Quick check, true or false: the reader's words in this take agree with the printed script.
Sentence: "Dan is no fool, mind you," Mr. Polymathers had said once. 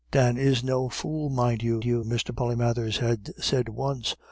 false